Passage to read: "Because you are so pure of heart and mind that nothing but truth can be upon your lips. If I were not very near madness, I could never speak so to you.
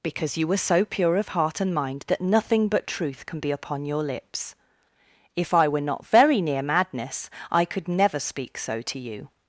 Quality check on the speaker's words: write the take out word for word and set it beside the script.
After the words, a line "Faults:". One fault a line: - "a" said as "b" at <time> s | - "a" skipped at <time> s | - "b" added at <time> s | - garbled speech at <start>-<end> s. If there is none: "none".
"Because you were so pure of heart and mind that nothing but truth can be upon your lips. If I were not very near madness, I could never speak so to you.
Faults:
- "are" said as "were" at 0.5 s